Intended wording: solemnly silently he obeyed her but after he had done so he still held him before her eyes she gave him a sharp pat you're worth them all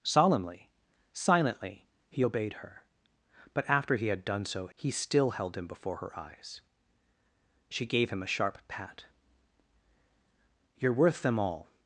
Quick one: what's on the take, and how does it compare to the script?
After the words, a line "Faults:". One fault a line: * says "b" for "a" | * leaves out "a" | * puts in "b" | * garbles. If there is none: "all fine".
solemnly silently he obeyed her but after he had done so he still held him before her eyes she gave him a sharp pat you're worth them all
Faults:
all fine